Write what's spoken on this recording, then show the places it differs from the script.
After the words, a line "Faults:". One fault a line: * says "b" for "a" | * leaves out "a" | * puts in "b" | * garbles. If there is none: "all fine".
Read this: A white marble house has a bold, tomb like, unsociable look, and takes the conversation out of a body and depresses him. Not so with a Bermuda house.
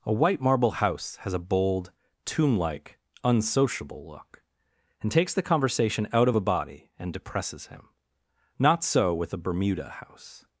A white marble house has a bold, tomb like, unsociable look, and takes the conversation out of a body and depresses him. Not so with a Bermuda house.
Faults:
all fine